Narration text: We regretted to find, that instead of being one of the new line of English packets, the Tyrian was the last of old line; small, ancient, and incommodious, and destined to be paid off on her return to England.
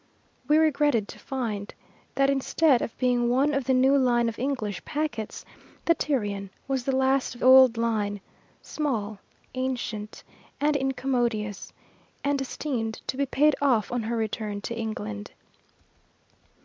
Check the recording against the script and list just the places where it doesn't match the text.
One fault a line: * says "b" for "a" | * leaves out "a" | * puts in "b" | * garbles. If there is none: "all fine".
all fine